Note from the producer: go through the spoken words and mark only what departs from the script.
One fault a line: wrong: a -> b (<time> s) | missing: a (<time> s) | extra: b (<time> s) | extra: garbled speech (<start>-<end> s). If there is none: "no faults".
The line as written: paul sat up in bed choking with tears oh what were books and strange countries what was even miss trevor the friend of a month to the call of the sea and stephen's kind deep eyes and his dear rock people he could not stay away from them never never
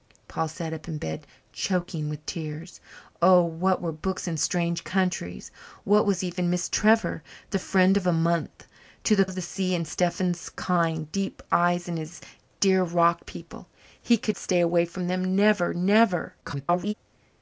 missing: call (9.2 s)
missing: not (14.4 s)
extra: garbled speech (16.4-16.9 s)